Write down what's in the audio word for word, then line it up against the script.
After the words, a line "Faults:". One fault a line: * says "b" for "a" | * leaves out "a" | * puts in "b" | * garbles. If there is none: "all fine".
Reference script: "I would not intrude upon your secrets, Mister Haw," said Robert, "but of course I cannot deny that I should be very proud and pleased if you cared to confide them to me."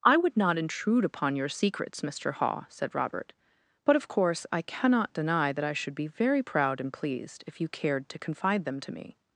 "I would not intrude upon your secrets, Mister Haw," said Robert, "but of course I cannot deny that I should be very proud and pleased if you cared to confide them to me."
Faults:
all fine